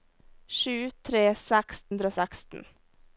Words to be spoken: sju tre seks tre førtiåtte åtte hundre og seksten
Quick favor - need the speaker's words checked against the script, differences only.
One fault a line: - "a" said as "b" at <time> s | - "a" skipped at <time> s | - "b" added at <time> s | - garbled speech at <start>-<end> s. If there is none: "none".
- "tre førtiåtte åtte" skipped at 1.8 s